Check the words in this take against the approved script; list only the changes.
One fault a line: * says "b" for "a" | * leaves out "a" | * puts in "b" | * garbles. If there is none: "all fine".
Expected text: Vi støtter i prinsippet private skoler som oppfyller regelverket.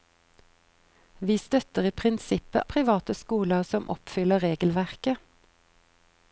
all fine